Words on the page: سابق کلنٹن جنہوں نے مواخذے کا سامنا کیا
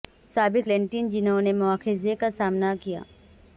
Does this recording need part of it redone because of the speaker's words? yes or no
no